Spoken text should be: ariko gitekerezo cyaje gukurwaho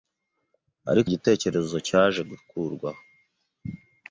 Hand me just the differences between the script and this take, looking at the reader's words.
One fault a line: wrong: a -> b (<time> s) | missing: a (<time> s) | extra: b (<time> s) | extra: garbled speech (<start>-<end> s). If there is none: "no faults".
no faults